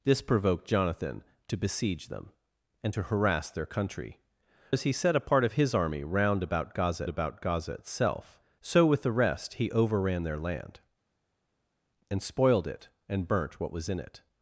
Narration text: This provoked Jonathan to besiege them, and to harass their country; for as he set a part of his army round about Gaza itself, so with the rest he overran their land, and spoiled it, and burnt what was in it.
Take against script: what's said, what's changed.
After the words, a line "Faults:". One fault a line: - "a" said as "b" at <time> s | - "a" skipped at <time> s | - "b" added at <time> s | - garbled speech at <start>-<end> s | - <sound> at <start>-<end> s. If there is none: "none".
This provoked Jonathan to besiege them, and to harass their country; as he set a part of his army round about Gaza about Gaza itself, so with the rest he overran their land, and spoiled it, and burnt what was in it.
Faults:
- "for" skipped at 4.2 s
- "about Gaza" added at 7.1 s